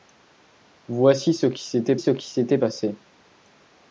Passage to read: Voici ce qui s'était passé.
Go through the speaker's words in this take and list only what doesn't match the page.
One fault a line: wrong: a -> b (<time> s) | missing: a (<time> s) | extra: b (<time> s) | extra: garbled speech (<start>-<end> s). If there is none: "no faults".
extra: ce qui s'était (2.0 s)